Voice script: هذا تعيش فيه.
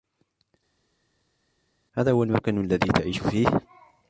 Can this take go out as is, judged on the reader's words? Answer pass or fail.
fail